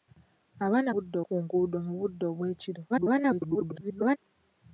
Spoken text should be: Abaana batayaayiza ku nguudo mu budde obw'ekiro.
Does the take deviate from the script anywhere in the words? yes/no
yes